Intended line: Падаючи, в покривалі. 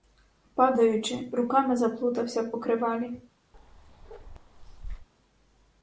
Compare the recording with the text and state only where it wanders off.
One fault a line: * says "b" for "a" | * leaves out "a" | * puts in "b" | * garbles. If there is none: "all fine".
* puts in "руками заплутався"